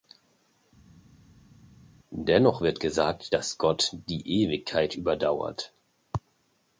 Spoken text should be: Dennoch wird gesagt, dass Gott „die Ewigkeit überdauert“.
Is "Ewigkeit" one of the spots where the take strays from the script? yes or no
no